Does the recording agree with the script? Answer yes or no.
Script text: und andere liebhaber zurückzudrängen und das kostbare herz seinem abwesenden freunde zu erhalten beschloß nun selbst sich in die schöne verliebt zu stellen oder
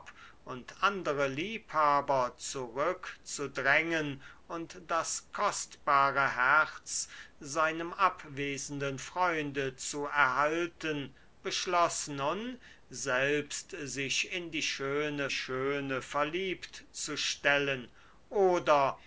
no